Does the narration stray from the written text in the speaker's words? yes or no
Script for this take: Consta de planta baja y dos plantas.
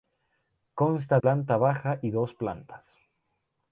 yes